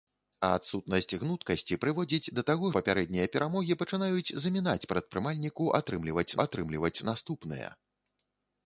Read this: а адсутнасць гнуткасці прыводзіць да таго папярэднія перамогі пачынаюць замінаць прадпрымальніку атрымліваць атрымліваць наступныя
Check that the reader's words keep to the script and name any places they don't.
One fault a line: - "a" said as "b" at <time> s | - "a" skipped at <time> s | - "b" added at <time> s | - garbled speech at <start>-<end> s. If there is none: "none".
none